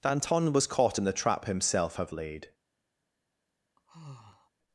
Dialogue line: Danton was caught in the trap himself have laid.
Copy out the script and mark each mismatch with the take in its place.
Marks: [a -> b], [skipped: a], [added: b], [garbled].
Danton was caught in the trap himself have laid.